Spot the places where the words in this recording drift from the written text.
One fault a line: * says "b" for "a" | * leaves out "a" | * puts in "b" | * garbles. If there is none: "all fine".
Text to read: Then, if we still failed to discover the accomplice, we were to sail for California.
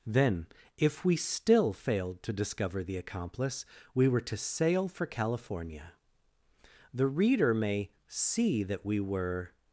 * puts in "The reader may see that we were"